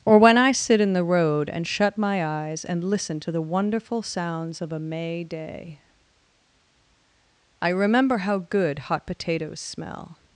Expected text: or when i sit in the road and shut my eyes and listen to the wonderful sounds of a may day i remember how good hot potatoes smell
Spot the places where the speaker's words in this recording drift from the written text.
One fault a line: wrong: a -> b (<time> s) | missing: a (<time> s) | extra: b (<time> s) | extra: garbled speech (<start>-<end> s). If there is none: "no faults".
no faults